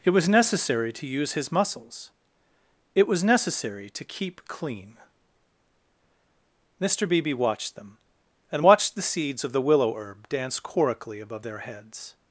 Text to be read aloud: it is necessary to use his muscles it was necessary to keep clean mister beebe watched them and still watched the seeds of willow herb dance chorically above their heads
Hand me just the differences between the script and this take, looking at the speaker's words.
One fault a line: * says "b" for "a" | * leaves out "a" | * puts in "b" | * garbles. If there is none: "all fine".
* says "was" for "is"
* leaves out "still"
* puts in "the"